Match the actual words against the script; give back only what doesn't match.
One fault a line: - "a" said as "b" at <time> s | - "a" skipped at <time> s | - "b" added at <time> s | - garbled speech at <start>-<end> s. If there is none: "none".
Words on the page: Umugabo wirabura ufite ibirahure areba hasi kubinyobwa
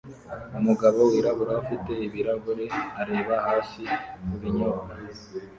none